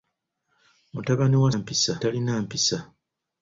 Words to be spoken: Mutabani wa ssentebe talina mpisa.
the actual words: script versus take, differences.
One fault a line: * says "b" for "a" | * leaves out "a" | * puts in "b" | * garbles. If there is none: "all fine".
* says "mpisa" for "ssentebe"